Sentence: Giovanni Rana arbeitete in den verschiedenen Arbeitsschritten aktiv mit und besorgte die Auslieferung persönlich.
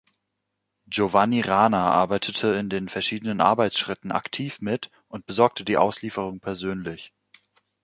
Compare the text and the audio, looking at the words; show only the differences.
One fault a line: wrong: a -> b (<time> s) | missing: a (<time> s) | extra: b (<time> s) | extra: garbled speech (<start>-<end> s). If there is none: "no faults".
no faults